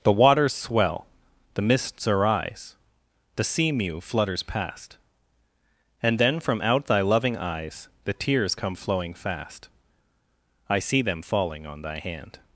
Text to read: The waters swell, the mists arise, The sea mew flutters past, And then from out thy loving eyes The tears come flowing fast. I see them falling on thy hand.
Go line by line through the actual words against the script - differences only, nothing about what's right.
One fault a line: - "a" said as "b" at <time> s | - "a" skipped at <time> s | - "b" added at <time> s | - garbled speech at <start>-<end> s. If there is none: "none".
none